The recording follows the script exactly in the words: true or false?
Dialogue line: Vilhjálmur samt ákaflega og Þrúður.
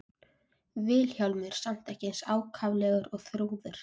false